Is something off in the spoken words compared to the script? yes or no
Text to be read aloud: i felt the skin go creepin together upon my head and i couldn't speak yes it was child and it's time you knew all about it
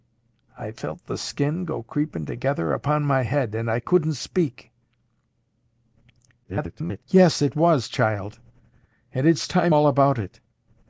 yes